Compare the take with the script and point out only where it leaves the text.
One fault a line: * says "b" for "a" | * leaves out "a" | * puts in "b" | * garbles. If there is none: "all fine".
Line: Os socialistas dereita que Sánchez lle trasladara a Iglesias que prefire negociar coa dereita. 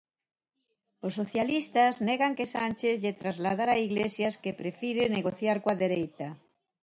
* says "negan" for "dereita"